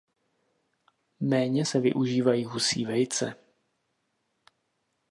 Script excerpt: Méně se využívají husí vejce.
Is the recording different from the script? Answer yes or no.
no